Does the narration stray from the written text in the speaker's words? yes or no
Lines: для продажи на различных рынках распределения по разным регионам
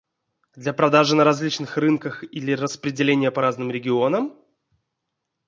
yes